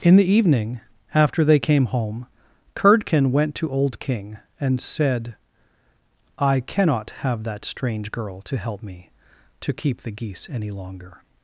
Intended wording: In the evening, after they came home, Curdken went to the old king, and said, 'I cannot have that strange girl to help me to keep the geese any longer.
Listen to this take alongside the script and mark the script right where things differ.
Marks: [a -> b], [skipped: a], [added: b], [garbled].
In the evening, after they came home, Curdken went to [skipped: the] old king, and said, 'I cannot have that strange girl to help me to keep the geese any longer.